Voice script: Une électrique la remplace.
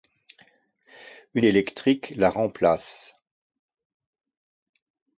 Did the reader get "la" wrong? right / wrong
right